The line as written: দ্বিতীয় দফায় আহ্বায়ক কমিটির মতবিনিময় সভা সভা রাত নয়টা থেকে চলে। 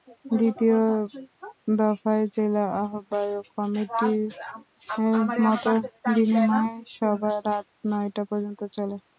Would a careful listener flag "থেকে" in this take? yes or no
yes